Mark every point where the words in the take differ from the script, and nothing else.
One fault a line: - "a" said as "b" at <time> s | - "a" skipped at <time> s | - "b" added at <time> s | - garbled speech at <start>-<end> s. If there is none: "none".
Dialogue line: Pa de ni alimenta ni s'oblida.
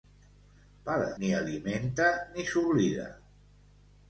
none